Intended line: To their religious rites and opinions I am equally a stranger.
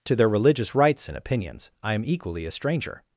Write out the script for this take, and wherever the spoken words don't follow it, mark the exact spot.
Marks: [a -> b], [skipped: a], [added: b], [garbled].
To their religious rites and opinions I am equally a stranger.